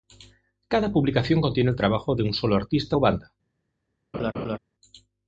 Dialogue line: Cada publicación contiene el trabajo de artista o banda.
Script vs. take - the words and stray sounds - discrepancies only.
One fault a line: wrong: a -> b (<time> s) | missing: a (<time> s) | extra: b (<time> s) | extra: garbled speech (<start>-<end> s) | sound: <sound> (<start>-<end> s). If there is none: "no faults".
extra: un solo (2.2 s)
sound: laugh (4.1-4.6 s)